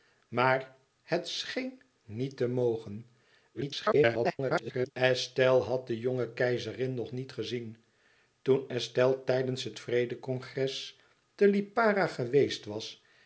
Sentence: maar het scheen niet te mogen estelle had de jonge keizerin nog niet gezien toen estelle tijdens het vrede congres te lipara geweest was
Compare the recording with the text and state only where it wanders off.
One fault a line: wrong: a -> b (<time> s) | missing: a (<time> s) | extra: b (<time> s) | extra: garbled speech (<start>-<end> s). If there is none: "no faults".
extra: garbled speech (3.5-4.9 s)